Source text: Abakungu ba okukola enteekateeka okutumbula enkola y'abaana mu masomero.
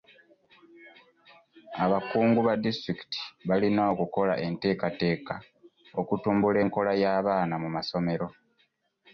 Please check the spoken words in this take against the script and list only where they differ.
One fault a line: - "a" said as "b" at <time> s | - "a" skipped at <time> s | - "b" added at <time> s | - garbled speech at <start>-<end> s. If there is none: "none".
- "disitulikiti balina" added at 2.6 s